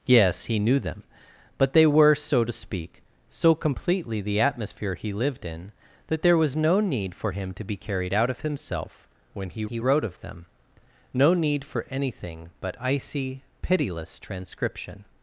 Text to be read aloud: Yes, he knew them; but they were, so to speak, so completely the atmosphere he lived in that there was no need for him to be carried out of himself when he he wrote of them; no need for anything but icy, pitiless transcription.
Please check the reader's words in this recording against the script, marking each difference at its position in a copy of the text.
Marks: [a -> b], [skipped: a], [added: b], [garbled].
Yes, he knew them; but they were, so to speak, so completely the atmosphere he lived in that there was no need for him to be carried out of himself when he he wrote of them; no need for anything but icy, pitiless transcription.